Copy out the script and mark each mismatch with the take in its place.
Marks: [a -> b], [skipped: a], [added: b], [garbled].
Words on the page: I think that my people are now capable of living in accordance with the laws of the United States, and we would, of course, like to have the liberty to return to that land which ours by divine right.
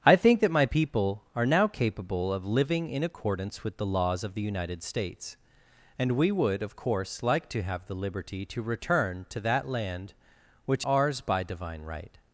I think that my people are now capable of living in accordance with the laws of the United States, and we would, of course, like to have the liberty to return to that land which ours by divine right.